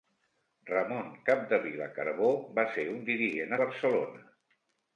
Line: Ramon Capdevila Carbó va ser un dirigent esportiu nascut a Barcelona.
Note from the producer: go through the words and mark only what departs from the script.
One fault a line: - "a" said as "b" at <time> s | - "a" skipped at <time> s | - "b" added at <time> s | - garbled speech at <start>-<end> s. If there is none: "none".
- "esportiu nascut" skipped at 3.5 s